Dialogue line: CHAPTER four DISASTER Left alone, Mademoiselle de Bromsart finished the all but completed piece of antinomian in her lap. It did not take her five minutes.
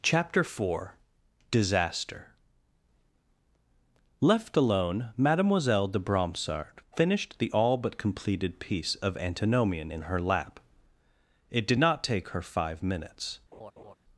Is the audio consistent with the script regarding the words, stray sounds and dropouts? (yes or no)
no